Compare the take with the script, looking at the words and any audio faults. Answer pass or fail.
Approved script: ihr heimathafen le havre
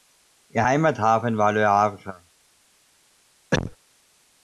fail